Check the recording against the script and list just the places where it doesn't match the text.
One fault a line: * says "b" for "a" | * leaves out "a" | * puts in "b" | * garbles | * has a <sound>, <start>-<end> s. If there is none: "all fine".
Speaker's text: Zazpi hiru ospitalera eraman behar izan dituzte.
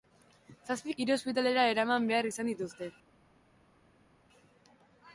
all fine